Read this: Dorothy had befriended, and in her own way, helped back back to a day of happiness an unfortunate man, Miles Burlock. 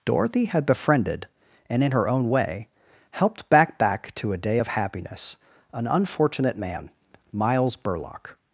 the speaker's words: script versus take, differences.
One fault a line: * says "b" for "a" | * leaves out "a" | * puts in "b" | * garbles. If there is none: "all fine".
all fine